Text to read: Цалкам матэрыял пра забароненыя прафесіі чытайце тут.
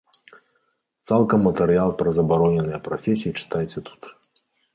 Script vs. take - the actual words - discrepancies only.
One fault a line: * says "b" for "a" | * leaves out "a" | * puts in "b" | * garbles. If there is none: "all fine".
all fine